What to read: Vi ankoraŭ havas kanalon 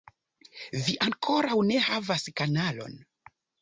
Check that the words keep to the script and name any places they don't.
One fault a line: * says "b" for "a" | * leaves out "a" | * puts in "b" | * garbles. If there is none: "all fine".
* puts in "ne"